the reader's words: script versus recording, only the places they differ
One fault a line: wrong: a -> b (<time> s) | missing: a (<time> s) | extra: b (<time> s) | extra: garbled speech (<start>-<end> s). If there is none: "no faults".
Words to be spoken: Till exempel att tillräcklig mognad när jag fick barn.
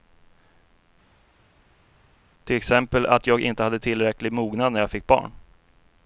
extra: jag inte hade (3.3 s)